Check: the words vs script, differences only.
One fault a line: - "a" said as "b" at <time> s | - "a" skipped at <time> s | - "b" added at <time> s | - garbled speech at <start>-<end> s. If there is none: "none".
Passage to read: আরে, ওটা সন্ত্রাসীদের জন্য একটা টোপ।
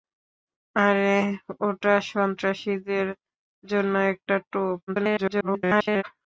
- garbled speech at 4.9-6.0 s